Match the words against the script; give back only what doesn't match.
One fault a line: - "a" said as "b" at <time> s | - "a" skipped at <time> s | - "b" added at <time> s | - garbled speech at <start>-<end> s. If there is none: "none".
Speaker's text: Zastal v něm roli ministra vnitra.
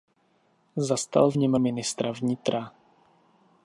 - "roli" skipped at 1.5 s